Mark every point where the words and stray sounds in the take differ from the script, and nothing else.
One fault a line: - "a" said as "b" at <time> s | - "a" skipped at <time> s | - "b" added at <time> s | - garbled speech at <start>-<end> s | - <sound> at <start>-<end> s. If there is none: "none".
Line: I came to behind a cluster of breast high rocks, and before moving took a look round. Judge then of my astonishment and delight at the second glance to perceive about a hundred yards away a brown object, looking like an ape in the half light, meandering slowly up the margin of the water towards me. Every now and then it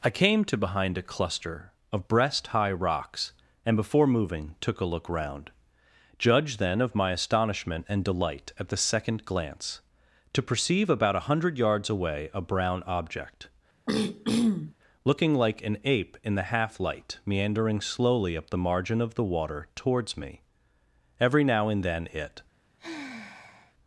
- throat clearing at 13.9-14.7 s
- sigh at 22.8-23.7 s